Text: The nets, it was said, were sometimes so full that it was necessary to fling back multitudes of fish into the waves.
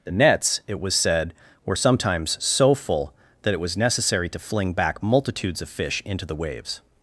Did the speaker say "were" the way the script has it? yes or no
yes